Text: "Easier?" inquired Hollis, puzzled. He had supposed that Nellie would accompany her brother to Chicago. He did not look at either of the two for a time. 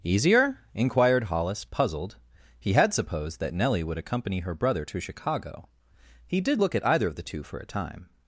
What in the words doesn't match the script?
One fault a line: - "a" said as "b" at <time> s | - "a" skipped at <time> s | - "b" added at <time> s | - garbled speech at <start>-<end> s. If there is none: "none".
- "not" skipped at 6.6 s